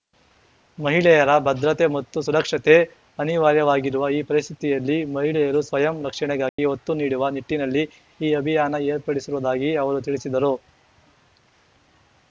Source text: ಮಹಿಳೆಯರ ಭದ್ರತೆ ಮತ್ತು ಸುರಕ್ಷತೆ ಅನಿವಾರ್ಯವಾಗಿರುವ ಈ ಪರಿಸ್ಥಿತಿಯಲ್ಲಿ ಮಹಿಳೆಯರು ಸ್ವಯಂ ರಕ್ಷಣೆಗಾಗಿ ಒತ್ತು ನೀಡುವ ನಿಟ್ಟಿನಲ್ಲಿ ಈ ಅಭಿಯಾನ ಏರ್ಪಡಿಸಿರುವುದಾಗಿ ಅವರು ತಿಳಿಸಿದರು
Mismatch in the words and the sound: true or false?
true